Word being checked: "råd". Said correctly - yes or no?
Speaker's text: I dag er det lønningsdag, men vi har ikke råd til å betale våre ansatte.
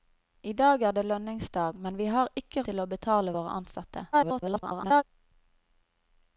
no